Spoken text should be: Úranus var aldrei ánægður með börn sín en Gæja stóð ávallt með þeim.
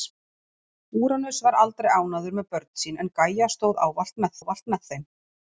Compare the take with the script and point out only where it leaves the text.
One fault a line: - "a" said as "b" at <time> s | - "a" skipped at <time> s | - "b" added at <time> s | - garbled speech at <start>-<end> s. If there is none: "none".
- "ávallt með" added at 4.4 s